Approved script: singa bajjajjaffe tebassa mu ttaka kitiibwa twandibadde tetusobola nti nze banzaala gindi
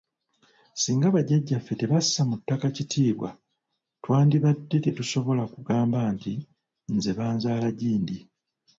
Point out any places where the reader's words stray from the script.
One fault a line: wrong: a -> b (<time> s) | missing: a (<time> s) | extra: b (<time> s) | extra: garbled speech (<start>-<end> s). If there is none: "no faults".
extra: kugamba (5.5 s)